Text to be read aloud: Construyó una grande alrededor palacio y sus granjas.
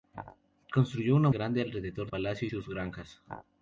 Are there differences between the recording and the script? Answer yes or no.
no